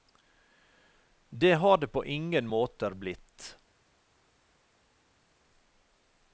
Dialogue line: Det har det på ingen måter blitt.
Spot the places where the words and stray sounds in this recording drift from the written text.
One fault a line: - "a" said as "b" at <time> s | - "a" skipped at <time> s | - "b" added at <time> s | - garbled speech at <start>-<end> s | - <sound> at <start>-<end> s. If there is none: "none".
none